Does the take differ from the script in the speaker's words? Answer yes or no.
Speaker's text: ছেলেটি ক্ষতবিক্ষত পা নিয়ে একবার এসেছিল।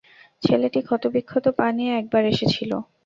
no